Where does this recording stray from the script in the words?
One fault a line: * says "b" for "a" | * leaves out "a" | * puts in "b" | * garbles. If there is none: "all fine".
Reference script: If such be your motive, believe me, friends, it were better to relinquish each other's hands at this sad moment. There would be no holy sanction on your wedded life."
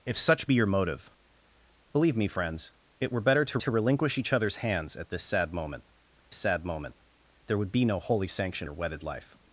* puts in "to"
* puts in "sad moment"
* leaves out "on"